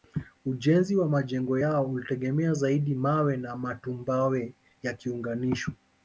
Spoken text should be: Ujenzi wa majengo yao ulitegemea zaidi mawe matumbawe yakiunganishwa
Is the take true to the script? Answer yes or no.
no